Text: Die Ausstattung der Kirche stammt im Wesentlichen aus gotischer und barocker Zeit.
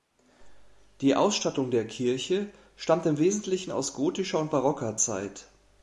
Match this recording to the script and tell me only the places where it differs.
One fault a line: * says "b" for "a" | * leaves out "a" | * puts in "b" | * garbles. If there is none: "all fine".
all fine